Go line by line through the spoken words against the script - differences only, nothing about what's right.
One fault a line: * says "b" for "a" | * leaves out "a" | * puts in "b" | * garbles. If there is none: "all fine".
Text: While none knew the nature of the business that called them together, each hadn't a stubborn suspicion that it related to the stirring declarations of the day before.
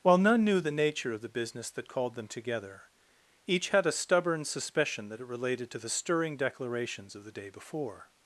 * says "had" for "hadn't"